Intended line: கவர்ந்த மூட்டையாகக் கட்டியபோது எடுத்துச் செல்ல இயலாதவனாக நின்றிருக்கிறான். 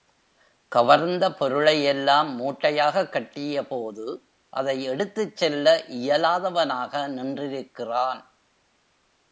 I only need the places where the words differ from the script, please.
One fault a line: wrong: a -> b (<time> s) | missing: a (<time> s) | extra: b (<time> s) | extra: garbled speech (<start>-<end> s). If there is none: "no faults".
extra: பொருளையெல்லாம் (1.3 s)
extra: அதை (4.5 s)